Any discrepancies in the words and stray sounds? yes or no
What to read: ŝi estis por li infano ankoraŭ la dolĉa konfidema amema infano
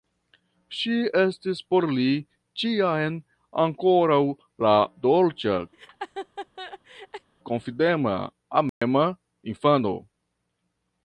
yes